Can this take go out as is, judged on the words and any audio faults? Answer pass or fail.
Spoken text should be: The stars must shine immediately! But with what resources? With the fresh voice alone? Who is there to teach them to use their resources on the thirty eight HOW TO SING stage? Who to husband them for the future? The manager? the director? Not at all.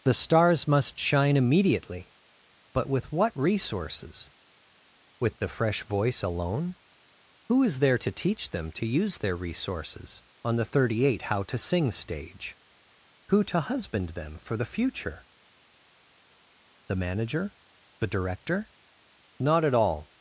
pass